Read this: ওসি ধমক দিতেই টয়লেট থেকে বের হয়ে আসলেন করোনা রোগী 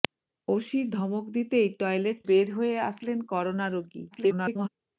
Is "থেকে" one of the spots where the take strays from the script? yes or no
yes